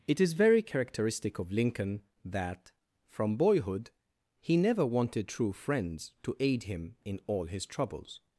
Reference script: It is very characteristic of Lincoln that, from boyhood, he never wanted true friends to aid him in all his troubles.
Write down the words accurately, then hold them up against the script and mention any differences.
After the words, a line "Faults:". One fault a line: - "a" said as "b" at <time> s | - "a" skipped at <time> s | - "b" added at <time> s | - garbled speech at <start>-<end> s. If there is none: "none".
It is very characteristic of Lincoln that, from boyhood, he never wanted true friends to aid him in all his troubles.
Faults:
none